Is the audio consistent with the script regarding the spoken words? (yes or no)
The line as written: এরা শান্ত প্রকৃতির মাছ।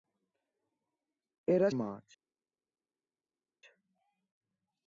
no